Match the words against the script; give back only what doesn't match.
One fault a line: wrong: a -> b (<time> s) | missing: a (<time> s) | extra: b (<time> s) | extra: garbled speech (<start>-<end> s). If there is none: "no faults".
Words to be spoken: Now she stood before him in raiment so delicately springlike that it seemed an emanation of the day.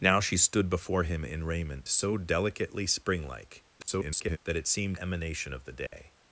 extra: garbled speech (3.8-4.4 s)
missing: an (5.0 s)